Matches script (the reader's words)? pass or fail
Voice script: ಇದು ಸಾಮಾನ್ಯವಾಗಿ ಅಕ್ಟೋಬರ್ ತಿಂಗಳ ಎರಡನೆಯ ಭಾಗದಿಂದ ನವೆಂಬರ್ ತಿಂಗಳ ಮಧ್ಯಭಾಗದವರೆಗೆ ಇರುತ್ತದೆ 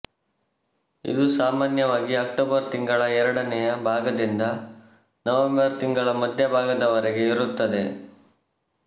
pass